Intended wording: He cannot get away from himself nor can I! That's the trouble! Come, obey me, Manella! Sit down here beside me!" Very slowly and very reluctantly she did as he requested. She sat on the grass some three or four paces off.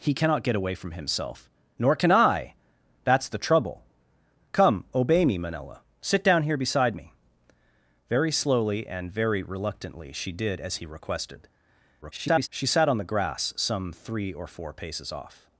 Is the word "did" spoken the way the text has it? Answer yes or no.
yes